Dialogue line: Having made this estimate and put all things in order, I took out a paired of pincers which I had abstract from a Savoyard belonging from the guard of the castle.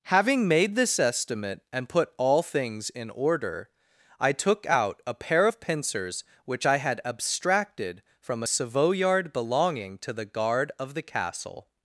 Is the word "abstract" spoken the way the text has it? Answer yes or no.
no